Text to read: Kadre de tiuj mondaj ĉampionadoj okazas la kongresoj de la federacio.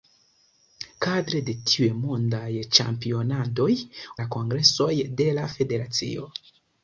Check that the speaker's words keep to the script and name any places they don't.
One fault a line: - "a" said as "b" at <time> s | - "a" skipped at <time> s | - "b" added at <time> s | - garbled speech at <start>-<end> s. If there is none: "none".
- "okazas" skipped at 3.7 s